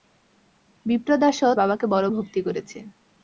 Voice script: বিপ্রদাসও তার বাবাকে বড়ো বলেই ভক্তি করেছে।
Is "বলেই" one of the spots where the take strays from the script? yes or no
yes